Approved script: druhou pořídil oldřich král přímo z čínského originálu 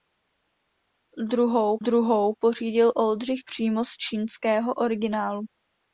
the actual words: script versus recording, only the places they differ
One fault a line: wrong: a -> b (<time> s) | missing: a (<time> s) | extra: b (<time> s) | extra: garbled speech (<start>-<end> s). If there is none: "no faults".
extra: druhou (1.8 s)
missing: král (3.4 s)